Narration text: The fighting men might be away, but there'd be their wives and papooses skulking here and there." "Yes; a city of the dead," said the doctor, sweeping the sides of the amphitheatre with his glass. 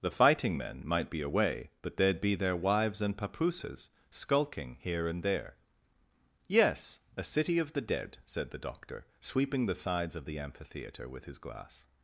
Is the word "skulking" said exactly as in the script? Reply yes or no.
yes